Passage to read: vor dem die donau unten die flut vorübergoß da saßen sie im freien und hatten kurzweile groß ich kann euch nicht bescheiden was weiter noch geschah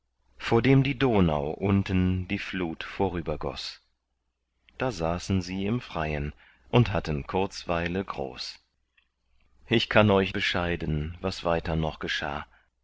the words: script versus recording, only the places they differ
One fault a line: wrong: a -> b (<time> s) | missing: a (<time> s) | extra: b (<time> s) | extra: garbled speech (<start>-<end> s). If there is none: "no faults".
missing: nicht (10.3 s)